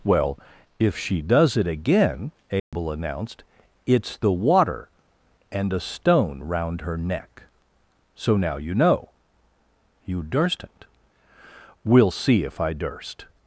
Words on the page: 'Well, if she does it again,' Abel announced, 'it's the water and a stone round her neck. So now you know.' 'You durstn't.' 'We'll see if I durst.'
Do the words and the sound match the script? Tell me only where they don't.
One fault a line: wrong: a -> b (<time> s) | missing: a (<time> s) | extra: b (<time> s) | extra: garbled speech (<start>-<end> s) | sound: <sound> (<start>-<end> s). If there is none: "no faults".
sound: dropout (2.6-2.7 s)